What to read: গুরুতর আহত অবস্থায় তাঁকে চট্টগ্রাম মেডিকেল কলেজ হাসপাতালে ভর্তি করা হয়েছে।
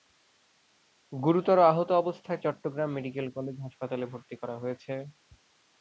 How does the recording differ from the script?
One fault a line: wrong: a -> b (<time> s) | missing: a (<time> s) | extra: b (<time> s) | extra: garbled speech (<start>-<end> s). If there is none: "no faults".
missing: তাঁকে (2.4 s)